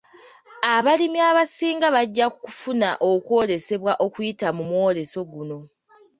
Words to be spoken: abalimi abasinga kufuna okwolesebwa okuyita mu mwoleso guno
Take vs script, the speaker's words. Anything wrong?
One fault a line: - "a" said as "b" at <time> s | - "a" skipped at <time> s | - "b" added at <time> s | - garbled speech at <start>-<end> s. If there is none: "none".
- "bajja" added at 1.9 s